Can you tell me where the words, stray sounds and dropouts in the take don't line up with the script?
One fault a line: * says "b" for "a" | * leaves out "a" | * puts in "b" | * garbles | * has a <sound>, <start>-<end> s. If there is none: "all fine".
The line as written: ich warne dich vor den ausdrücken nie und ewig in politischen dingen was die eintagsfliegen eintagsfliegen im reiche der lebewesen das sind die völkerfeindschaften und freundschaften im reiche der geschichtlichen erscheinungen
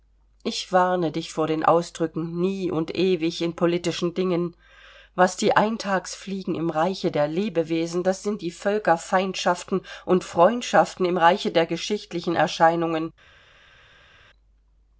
* leaves out "eintagsfliegen"